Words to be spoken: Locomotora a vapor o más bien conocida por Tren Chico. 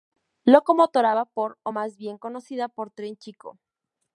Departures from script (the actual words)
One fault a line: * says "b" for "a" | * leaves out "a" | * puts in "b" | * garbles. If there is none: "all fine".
all fine